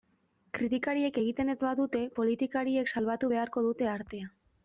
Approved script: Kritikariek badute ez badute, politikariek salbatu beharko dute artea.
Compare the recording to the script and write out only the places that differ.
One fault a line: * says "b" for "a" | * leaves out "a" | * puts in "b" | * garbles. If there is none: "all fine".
* says "egiten" for "badute"